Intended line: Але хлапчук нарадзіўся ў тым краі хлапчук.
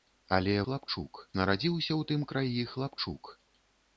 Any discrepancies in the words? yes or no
no